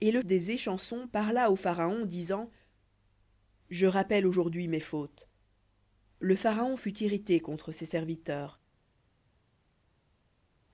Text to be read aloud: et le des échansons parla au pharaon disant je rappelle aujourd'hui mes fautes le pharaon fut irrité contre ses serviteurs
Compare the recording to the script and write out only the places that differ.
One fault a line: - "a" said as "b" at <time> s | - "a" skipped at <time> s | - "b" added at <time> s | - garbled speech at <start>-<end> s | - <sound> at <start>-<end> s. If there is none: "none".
none